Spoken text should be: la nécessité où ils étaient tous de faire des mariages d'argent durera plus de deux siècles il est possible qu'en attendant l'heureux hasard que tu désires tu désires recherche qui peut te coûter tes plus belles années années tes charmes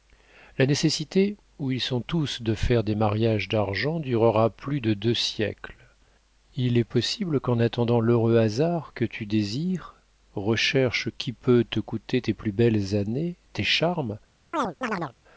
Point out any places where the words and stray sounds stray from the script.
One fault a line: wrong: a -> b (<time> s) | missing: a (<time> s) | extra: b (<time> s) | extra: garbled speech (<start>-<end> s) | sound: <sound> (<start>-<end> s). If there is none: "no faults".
wrong: étaient -> sont (1.8 s)
missing: tu désires (9.9 s)
missing: années (13.3 s)
sound: chirp (14.5-15.1 s)